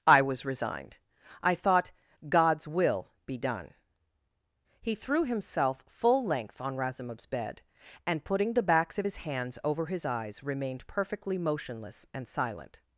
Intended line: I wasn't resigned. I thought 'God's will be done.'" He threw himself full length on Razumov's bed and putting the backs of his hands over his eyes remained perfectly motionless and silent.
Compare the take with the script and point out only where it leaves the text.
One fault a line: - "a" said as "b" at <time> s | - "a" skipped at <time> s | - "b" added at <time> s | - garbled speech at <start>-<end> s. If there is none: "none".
- "wasn't" said as "was" at 0.2 s